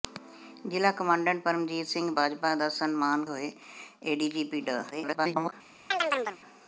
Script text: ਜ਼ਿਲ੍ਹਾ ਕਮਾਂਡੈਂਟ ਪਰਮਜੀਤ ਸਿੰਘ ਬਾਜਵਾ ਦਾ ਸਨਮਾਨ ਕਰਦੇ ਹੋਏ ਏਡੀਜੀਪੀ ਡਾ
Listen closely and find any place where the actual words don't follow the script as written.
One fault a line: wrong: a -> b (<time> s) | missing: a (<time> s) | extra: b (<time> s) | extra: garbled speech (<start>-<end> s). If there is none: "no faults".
missing: ਕਰਦੇ (3.3 s)
extra: garbled speech (4.9-5.5 s)